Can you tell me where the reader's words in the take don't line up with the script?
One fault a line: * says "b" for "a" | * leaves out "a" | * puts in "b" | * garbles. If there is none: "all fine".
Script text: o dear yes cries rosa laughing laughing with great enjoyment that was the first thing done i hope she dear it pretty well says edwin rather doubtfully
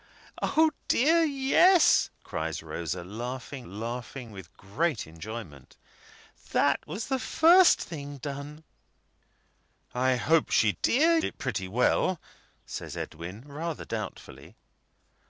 all fine